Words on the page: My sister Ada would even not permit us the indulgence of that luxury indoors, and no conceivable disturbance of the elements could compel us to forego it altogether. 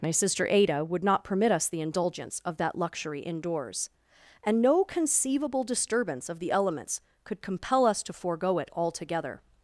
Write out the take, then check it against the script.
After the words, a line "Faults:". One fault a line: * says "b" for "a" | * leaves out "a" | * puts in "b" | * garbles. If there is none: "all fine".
My sister Ada would not permit us the indulgence of that luxury indoors, and no conceivable disturbance of the elements could compel us to forego it altogether.
Faults:
* leaves out "even"